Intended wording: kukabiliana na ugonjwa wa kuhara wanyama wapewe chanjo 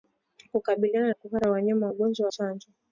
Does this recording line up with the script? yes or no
no